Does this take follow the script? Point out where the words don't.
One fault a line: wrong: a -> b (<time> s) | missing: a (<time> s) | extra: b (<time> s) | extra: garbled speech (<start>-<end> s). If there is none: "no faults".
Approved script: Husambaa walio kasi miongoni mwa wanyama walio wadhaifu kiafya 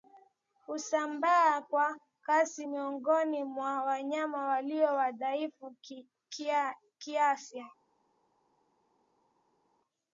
wrong: walio -> kwa (1.6 s)